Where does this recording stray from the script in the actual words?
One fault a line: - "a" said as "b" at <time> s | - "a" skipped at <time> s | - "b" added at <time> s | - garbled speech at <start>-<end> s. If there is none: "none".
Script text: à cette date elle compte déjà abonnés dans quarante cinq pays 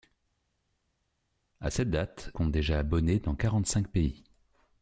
- "elle" skipped at 2.3 s